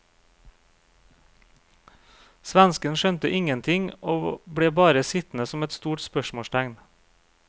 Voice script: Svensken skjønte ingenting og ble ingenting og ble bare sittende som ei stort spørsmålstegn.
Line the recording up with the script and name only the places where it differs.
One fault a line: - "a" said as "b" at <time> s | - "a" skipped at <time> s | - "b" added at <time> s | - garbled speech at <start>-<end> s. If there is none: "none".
- "ingenting og ble" skipped at 4.7 s
- "ei" said as "et" at 5.6 s